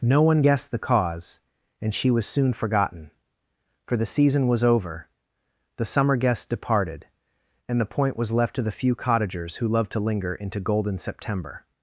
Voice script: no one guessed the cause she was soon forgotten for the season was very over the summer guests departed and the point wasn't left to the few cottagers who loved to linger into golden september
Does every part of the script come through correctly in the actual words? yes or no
no